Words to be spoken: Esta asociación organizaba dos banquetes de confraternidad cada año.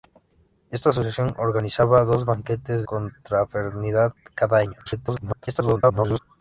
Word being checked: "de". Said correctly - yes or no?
no